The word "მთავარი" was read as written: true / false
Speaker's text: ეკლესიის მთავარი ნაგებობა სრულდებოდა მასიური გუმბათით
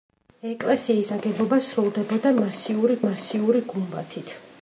false